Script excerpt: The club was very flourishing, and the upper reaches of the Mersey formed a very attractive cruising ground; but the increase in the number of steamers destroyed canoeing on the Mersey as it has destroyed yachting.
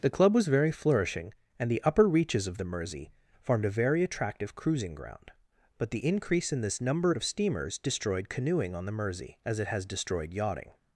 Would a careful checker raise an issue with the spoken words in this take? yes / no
yes